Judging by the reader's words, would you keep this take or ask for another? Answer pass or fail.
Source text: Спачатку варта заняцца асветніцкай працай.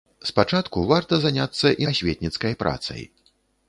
pass